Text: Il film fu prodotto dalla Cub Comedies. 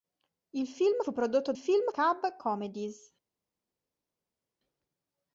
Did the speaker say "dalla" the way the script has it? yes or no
no